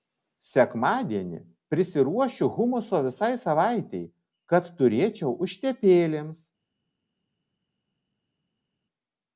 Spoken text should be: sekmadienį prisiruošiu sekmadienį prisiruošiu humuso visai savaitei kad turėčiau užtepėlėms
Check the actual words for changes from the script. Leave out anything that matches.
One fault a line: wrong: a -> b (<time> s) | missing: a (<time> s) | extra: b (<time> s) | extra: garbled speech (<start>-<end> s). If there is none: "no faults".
missing: sekmadienį prisiruošiu (2.5 s)